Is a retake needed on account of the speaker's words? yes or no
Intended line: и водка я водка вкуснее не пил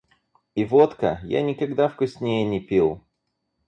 yes